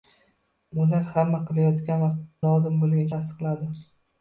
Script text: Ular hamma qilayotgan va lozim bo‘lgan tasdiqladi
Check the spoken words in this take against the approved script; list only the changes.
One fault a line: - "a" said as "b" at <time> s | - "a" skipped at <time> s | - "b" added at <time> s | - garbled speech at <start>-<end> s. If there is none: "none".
none